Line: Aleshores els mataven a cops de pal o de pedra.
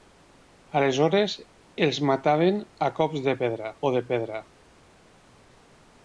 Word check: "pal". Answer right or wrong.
wrong